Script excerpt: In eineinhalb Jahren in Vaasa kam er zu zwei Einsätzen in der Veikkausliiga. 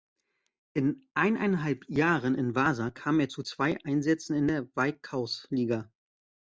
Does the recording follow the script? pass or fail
pass